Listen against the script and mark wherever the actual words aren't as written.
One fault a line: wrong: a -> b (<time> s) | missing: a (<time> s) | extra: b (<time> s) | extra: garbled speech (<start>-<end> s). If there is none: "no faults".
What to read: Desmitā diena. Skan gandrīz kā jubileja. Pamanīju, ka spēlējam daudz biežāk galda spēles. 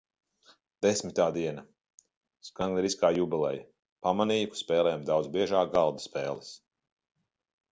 no faults